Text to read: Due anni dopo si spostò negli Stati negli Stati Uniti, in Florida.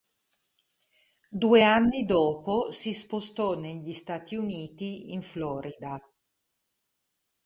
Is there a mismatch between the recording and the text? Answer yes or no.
yes